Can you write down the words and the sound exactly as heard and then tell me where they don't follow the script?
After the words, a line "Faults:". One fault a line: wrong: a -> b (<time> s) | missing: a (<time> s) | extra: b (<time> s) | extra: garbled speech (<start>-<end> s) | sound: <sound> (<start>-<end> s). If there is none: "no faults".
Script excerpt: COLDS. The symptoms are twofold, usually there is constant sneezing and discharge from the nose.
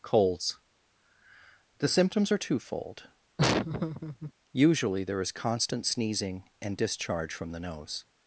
COLDS. The symptoms are twofold, usually there is constant sneezing and discharge from the nose.
Faults:
sound: laugh (3.4-4.3 s)